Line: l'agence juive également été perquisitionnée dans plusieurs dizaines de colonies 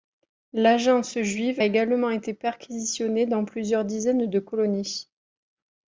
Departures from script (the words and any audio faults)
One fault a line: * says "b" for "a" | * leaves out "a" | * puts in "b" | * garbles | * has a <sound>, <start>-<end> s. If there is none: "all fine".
all fine